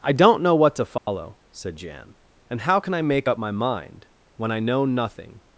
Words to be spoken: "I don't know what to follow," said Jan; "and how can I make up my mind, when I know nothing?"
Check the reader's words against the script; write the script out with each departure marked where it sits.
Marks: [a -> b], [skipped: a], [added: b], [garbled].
"I don't know what to follow," said Jan; "and how can I make up my mind, when I know nothing?"